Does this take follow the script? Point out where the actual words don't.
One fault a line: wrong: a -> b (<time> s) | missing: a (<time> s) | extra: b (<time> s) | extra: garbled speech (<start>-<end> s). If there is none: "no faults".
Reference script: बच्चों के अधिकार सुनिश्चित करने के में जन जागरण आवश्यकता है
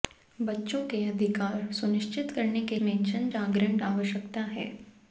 no faults